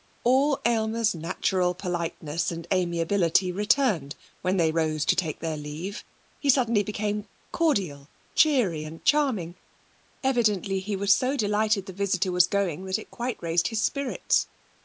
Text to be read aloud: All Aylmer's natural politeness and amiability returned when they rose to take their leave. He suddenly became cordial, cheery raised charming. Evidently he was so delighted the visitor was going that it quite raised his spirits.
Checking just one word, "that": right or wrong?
right